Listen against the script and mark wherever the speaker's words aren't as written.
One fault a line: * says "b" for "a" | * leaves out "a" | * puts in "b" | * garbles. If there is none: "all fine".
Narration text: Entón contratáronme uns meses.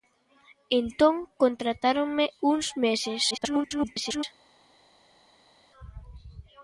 * garbles